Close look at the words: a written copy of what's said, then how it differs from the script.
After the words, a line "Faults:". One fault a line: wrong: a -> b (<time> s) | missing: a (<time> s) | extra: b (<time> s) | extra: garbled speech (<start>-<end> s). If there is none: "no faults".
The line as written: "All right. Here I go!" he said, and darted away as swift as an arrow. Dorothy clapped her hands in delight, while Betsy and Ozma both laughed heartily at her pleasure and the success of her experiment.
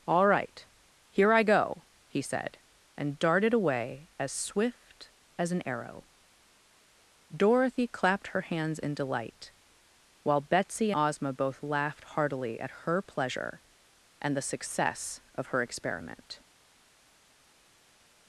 "All right. Here I go!" he said, and darted away as swift as an arrow. Dorothy clapped her hands in delight, while Betsy Ozma both laughed heartily at her pleasure and the success of her experiment.
Faults:
missing: and (10.9 s)